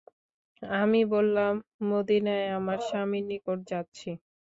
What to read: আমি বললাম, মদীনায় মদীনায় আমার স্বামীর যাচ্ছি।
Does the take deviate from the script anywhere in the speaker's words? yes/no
yes